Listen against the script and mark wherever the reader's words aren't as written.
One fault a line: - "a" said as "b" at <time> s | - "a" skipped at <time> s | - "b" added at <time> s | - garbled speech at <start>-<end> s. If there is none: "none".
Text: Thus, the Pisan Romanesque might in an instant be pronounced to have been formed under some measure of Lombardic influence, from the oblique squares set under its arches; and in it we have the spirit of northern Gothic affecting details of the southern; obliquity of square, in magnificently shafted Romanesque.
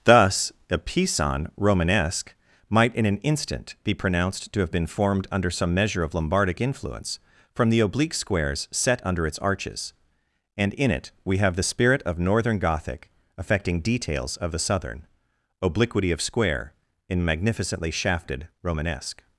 - "the" said as "a" at 0.7 s